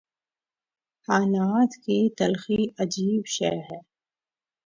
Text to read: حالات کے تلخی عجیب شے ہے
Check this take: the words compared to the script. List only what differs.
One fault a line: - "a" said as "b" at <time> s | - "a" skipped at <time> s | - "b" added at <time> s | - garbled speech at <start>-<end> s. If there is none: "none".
- "کے" said as "کی" at 1.8 s